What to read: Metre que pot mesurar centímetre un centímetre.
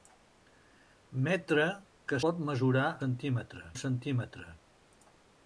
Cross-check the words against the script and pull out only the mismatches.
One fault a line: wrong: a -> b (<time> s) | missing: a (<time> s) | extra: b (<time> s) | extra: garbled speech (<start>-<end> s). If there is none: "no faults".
no faults